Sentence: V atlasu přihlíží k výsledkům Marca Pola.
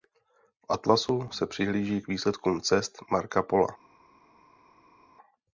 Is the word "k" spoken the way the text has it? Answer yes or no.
yes